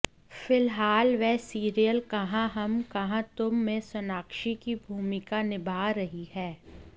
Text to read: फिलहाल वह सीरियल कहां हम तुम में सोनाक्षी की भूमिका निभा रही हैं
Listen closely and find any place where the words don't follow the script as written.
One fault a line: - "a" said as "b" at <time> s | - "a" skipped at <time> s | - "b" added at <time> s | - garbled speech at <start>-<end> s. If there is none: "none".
- "कहां" added at 2.9 s